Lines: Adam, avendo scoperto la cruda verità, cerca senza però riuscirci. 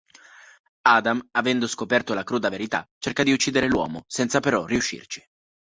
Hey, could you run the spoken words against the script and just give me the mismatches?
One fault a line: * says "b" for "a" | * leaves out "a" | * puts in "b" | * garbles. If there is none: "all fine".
* puts in "di uccidere l'uomo"